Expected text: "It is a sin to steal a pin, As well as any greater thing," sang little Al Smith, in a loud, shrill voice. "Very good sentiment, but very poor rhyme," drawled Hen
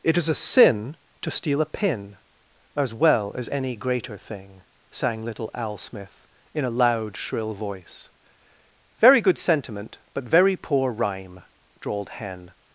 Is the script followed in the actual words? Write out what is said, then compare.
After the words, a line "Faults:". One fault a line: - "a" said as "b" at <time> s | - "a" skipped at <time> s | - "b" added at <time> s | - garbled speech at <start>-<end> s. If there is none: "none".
"It is a sin to steal a pin, As well as any greater thing," sang little Al Smith, in a loud, shrill voice. "Very good sentiment, but very poor rhyme," drawled Hen
Faults:
none